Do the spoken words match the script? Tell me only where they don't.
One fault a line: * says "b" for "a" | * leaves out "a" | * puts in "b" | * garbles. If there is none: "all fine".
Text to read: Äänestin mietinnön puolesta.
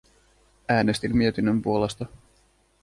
all fine